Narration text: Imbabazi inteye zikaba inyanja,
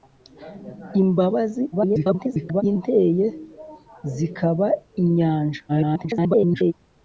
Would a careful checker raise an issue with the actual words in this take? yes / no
yes